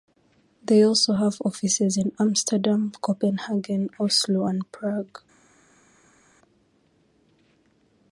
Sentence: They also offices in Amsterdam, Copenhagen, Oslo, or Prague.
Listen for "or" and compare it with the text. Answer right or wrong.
wrong